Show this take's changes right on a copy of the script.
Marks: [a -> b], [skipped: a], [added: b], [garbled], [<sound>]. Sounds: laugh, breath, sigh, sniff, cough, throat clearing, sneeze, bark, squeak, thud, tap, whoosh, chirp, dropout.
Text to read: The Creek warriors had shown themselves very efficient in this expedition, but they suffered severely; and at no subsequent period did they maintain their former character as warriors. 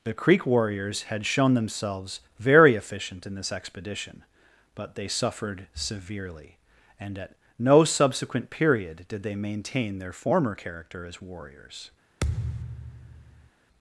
The Creek warriors had shown themselves very efficient in this expedition, but they suffered severely; and at no subsequent period did they maintain their former character as warriors. [thud]